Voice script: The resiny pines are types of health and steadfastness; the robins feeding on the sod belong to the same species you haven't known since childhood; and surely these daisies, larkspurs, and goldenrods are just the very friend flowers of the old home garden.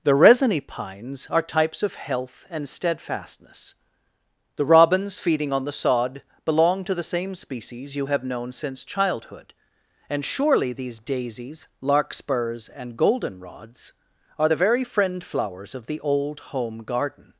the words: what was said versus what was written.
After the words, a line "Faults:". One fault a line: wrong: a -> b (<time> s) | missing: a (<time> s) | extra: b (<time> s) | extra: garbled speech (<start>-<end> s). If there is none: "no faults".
The resiny pines are types of health and steadfastness; the robins feeding on the sod belong to the same species you have known since childhood; and surely these daisies, larkspurs, and goldenrods are the very friend flowers of the old home garden.
Faults:
wrong: haven't -> have (8.1 s)
missing: just (14.5 s)